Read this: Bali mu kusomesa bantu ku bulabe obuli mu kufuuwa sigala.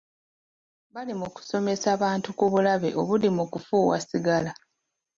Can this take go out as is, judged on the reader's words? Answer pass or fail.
pass